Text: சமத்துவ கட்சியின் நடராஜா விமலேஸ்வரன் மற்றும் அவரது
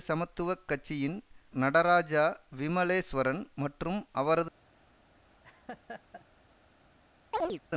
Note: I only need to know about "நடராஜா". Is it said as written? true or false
true